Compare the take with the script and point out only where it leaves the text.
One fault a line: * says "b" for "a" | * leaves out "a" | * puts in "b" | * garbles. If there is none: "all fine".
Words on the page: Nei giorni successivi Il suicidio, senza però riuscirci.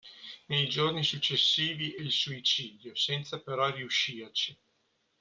all fine